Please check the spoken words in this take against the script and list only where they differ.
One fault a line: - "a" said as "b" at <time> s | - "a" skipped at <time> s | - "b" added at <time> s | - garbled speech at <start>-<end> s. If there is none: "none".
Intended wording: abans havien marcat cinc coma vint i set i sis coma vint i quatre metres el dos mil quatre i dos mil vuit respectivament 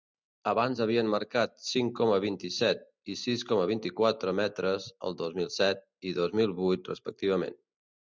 - "quatre" said as "set" at 5.6 s